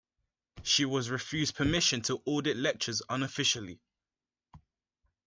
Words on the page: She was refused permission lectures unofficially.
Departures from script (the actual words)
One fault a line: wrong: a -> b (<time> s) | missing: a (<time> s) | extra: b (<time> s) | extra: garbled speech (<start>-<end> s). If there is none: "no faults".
extra: to audit (2.0 s)